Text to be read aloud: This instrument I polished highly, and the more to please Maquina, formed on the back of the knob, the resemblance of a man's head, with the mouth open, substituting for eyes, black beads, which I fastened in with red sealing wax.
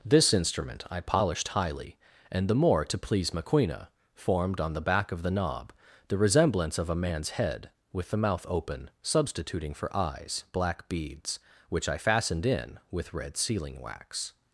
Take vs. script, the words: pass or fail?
pass